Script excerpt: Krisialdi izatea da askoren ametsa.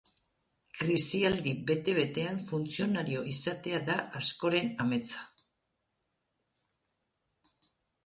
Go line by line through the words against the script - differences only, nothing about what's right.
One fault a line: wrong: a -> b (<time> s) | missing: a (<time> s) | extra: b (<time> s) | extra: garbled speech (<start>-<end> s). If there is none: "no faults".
extra: bete betean funtzionario (1.7 s)